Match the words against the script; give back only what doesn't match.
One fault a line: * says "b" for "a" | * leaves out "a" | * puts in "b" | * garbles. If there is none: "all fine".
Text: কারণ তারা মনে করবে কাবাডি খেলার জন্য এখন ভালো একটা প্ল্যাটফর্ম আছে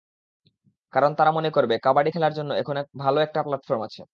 all fine